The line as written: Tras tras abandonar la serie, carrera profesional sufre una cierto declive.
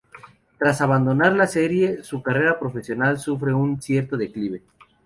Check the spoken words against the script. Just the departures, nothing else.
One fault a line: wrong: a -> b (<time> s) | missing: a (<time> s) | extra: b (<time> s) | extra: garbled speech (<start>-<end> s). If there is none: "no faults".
missing: tras (0.8 s)
extra: su (2.0 s)
wrong: una -> un (3.5 s)